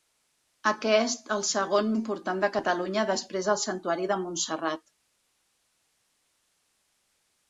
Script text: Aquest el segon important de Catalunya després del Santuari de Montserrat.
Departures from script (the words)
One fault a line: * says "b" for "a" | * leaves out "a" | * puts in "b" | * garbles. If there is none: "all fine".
all fine